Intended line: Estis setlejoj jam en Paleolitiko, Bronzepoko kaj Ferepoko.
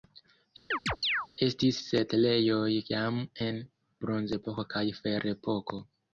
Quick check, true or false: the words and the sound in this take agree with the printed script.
false